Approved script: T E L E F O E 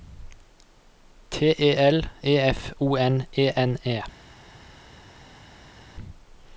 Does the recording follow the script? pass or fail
fail